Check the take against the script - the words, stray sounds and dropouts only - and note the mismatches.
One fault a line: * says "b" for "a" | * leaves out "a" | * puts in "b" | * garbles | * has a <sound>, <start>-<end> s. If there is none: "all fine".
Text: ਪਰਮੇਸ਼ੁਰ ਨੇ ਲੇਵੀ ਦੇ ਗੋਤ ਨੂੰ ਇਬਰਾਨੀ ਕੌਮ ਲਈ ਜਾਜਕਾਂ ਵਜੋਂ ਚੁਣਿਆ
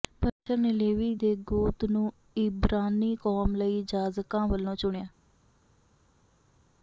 all fine